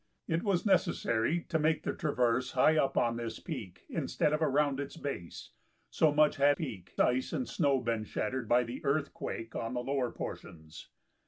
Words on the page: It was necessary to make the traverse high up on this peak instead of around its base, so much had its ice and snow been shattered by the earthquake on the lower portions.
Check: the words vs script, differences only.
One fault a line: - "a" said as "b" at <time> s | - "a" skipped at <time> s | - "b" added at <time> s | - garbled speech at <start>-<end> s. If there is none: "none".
- "its" said as "peak" at 6.5 s